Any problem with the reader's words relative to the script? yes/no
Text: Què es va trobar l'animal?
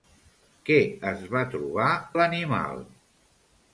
no